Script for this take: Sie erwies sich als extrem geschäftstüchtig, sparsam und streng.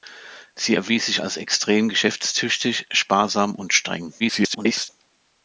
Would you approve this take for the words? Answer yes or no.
no